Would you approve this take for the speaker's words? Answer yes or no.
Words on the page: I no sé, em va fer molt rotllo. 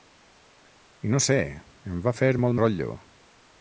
yes